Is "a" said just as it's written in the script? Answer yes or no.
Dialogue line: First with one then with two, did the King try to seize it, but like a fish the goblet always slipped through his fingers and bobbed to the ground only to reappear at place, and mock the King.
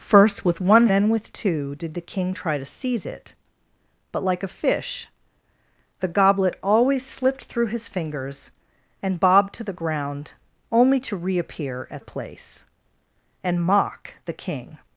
yes